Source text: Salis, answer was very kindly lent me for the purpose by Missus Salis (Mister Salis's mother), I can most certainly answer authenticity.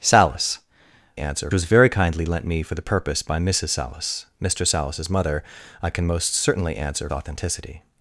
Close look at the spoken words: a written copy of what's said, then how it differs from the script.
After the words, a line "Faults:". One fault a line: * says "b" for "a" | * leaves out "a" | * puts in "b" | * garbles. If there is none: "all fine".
Salis, answer was very kindly lent me for the purpose by Missus Salis (Mister Salis's mother), I can most certainly answer authenticity.
Faults:
all fine